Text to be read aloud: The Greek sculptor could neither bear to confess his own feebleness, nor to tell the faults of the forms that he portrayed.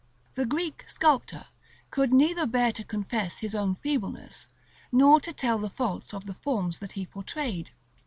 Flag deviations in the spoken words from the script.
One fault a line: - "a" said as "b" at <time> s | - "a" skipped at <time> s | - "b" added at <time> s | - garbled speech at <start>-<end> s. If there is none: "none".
none